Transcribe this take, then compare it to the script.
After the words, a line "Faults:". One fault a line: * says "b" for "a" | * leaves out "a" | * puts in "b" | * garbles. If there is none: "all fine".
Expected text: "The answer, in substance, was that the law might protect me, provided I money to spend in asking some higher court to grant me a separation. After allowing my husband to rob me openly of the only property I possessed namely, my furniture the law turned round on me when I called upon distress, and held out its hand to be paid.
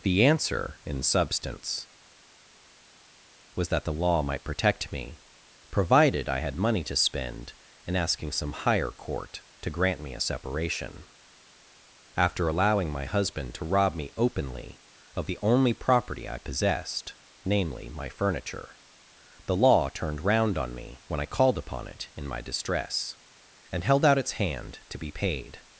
"The answer, in substance, was that the law might protect me, provided I had money to spend in asking some higher court to grant me a separation. After allowing my husband to rob me openly of the only property I possessed namely, my furniture the law turned round on me when I called upon it in my distress, and held out its hand to be paid.
Faults:
* puts in "had"
* puts in "it in my"